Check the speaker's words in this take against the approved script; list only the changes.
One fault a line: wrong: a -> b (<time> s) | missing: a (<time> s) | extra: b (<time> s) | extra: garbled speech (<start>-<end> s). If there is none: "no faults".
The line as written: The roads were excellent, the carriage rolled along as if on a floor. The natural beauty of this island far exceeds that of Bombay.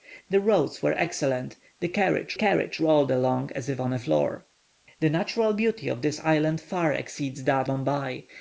extra: carriage (2.3 s)
missing: of (7.7 s)